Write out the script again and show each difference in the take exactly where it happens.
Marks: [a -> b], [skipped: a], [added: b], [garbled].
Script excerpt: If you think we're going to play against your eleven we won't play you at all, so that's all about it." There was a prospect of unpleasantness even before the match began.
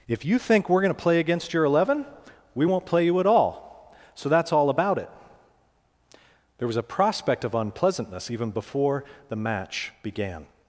If you think we're going to play against your eleven we won't play you at all, so that's all about it." There was a prospect of unpleasantness even before the match began.